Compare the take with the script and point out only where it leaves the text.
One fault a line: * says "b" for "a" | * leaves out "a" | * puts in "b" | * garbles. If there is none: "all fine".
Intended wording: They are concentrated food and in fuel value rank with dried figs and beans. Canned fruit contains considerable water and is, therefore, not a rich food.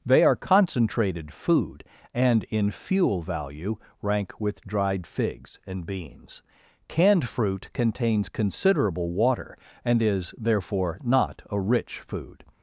all fine